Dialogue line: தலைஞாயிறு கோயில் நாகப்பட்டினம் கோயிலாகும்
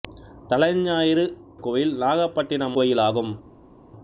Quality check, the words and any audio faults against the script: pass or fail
pass